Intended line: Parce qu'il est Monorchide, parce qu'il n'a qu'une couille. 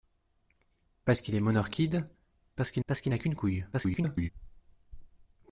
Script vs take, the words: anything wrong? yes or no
yes